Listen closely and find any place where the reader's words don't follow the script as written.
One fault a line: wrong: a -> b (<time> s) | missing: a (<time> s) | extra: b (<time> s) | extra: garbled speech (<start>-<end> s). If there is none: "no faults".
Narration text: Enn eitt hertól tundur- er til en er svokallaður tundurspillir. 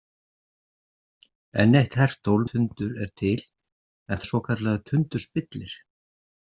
no faults